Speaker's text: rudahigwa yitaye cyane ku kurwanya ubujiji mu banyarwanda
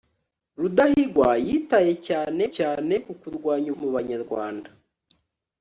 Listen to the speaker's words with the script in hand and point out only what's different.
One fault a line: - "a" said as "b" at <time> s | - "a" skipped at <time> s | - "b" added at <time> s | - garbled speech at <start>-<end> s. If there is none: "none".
- "cyane" added at 2.6 s
- "ubujiji" skipped at 3.7 s